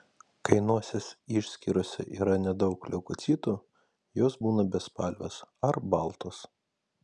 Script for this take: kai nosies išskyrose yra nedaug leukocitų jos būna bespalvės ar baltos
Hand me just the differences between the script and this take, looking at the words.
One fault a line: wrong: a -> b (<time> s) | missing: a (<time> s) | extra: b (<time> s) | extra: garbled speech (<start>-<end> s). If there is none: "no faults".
no faults